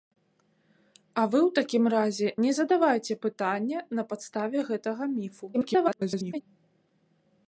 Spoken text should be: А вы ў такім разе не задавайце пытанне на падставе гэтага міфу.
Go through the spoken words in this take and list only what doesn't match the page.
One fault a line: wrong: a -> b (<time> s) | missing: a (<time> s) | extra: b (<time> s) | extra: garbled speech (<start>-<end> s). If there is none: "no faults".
extra: garbled speech (5.5-6.4 s)